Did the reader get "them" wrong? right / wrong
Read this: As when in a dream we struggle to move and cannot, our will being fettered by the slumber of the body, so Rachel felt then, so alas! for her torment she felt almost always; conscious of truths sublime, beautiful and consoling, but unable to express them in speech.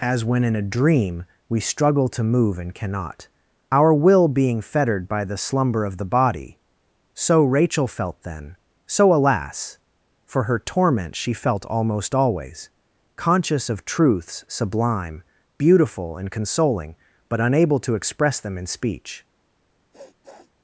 right